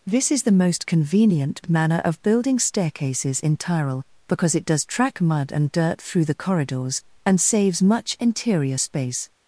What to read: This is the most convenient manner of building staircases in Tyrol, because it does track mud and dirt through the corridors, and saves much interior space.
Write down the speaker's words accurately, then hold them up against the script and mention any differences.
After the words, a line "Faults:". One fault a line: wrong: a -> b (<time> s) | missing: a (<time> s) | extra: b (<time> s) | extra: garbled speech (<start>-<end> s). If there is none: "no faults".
This is the most convenient manner of building staircases in Tyrol, because it does track mud and dirt through the corridors, and saves much interior space.
Faults:
no faults